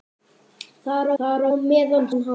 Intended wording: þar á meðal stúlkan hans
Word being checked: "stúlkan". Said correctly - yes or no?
no